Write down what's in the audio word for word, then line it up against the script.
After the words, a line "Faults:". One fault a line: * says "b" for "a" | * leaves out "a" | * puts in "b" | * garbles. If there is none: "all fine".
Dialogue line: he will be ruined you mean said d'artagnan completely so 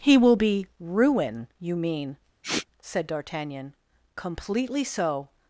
he will be ruin you mean said d'artagnan completely so
Faults:
* says "ruin" for "ruined"